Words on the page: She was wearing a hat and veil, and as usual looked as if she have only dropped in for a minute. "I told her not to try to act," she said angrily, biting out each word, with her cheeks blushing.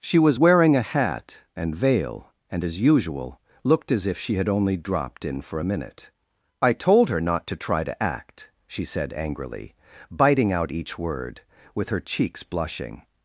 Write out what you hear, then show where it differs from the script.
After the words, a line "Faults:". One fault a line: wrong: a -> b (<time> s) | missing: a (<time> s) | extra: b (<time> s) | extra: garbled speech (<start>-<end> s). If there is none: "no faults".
She was wearing a hat and veil, and as usual looked as if she had only dropped in for a minute. "I told her not to try to act," she said angrily, biting out each word, with her cheeks blushing.
Faults:
wrong: have -> had (4.4 s)